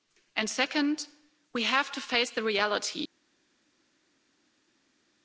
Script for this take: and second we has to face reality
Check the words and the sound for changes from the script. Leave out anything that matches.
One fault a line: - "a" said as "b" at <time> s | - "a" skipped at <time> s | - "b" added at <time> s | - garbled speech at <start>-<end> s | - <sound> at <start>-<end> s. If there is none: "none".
- "has" said as "have" at 1.6 s
- "the" added at 2.3 s